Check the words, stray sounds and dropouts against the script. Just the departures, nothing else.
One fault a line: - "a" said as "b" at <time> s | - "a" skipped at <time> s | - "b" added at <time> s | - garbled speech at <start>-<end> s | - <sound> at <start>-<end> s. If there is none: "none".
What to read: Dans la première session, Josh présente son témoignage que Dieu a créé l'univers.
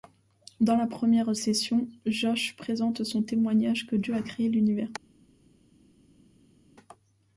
none